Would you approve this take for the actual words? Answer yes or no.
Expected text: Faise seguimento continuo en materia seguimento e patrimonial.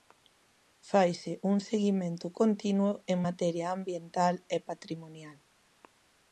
no